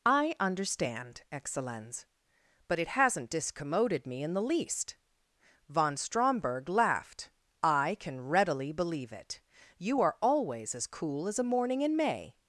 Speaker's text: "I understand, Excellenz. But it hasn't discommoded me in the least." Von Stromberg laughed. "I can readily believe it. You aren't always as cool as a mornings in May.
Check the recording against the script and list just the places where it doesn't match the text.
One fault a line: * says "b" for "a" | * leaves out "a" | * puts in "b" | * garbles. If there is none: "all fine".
* says "are" for "aren't"
* says "morning" for "mornings"